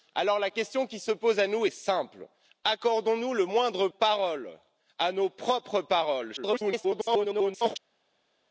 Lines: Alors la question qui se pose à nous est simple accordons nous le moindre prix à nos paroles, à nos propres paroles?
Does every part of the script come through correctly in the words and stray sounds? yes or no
no